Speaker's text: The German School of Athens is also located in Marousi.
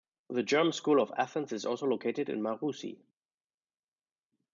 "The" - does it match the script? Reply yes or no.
yes